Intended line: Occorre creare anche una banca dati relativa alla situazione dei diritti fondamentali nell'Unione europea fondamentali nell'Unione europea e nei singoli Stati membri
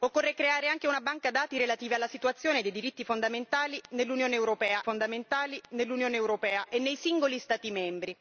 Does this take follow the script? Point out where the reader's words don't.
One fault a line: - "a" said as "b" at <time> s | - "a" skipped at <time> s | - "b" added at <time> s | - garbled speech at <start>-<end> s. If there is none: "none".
none